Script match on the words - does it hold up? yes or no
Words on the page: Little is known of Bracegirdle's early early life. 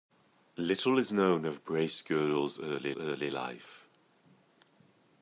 yes